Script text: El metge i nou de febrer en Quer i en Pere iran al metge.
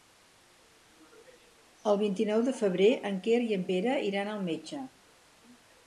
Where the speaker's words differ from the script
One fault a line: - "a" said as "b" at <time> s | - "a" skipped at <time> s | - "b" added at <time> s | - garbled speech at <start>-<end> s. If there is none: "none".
- "metge" said as "vint" at 2.0 s